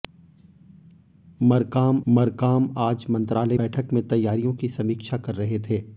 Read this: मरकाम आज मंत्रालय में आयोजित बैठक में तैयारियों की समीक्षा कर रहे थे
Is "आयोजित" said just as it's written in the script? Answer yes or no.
no